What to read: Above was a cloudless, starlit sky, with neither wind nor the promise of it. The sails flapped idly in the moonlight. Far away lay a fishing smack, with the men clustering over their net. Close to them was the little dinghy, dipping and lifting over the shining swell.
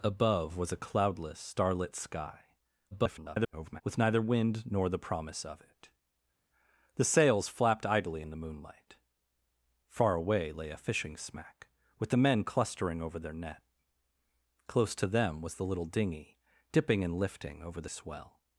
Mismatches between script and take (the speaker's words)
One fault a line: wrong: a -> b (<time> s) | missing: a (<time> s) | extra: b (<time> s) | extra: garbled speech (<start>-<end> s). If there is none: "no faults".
extra: garbled speech (2.9-3.8 s)
missing: shining (17.9 s)